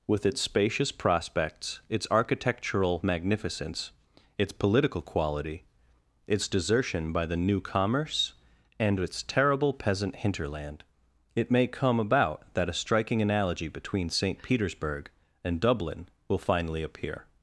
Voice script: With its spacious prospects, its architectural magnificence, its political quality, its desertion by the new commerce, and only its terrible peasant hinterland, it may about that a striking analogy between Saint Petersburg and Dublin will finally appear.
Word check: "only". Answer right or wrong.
wrong